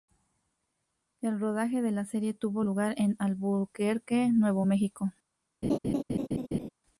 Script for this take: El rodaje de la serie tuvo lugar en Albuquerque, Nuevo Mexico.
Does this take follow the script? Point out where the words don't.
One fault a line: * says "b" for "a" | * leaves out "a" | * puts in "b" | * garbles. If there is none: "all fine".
all fine